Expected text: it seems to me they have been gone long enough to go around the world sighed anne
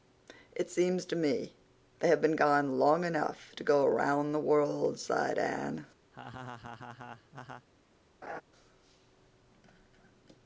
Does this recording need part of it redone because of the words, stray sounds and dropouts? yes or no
yes